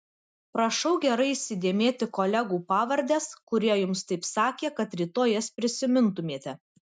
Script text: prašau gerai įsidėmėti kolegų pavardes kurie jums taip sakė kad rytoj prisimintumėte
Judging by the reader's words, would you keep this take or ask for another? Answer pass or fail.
fail